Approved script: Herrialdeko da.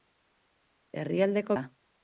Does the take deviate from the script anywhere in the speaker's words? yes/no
no